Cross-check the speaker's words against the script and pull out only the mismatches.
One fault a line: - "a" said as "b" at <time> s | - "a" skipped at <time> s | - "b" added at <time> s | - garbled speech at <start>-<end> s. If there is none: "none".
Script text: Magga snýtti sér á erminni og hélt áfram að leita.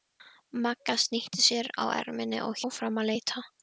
- "hélt" skipped at 2.6 s